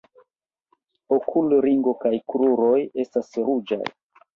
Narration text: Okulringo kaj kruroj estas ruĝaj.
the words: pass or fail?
pass